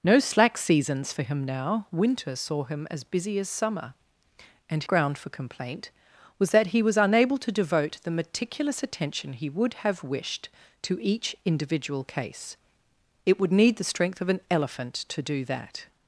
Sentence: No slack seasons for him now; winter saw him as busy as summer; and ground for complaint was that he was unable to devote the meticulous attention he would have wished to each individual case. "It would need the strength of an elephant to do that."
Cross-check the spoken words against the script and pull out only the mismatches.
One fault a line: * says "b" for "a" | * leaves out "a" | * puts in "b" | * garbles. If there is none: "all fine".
all fine